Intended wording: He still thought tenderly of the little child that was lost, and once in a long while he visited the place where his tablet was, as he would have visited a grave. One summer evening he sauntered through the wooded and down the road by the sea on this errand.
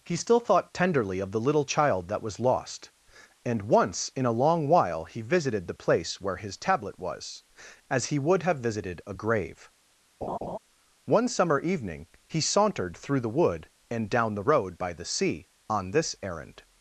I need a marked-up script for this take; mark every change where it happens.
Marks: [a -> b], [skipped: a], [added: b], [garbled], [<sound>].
He still thought tenderly of the little child that was lost, and once in a long while he visited the place where his tablet was, as he would have visited a grave. [laugh] One summer evening he sauntered through the [wooded -> wood] and down the road by the sea on this errand.